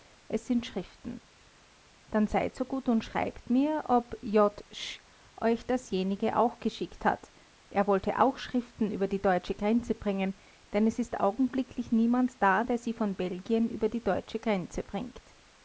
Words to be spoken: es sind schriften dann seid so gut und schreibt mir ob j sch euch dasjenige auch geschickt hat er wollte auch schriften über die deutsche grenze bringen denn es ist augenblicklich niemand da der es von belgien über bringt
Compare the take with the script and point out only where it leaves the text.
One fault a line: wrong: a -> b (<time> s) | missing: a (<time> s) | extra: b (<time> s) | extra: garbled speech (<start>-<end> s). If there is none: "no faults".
wrong: es -> sie (12.8 s)
extra: die deutsche grenze (13.9 s)